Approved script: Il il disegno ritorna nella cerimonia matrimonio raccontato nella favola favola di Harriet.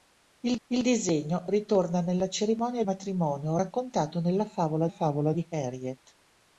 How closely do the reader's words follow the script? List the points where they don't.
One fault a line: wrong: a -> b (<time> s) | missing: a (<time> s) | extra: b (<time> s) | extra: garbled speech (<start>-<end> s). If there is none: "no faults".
no faults